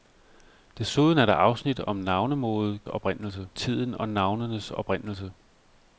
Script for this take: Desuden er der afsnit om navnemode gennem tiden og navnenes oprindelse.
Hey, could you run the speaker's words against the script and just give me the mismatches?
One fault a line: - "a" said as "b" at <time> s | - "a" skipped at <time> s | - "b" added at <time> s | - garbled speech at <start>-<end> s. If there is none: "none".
- "gennem" said as "oprindelse" at 2.9 s